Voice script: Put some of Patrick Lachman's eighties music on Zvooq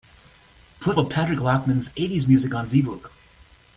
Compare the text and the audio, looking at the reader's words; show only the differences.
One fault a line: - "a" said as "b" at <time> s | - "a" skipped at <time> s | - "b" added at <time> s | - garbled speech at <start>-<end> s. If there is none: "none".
- "some" skipped at 1.0 s